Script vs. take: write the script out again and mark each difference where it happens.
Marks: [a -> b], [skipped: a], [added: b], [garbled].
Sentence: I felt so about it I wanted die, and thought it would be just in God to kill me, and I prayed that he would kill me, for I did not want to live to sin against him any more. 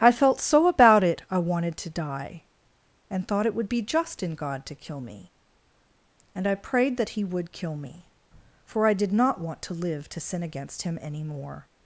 I felt so about it I wanted [added: to] die, and thought it would be just in God to kill me, and I prayed that he would kill me, for I did not want to live to sin against him any more.